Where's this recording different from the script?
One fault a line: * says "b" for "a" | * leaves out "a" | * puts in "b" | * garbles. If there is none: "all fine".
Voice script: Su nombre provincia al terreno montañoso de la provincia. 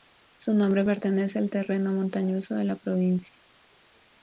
* says "pertenece" for "provincia"